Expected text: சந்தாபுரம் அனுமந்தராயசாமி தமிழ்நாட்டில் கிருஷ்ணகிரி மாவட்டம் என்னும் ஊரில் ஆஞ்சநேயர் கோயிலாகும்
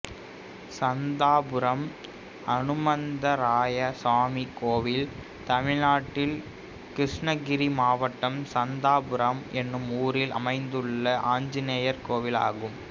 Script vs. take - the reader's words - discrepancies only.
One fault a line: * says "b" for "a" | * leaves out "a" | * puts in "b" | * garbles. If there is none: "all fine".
* puts in "கோயில்"
* puts in "சந்தாபுரம்"
* puts in "அமைந்துள்ள"